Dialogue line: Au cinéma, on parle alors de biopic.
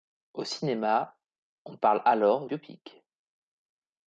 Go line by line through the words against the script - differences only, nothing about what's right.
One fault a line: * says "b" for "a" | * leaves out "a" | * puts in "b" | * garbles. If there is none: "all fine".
* leaves out "de"